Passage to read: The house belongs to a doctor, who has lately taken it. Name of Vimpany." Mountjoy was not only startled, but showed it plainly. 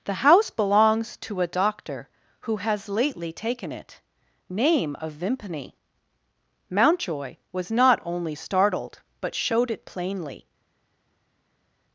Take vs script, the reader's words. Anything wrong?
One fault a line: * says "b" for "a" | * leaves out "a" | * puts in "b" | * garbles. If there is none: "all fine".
all fine